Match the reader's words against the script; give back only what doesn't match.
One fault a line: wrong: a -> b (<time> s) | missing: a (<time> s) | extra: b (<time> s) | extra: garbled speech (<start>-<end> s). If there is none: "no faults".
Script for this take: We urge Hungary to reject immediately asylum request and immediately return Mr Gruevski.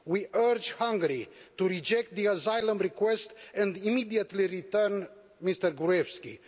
wrong: immediately -> the (2.1 s)